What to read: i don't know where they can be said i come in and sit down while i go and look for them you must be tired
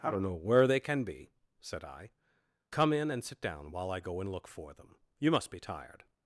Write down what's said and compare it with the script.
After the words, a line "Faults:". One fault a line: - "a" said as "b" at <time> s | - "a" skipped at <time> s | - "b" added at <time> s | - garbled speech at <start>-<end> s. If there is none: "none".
i don't know where they can be said i come in and sit down while i go and look for them you must be tired
Faults:
none